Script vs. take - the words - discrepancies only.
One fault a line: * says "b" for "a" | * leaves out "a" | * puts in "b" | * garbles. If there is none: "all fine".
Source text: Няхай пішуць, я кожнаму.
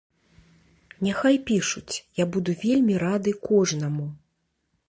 * puts in "буду вельмі рады"